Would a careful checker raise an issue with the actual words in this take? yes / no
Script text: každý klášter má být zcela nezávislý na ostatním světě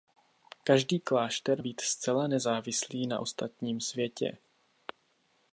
yes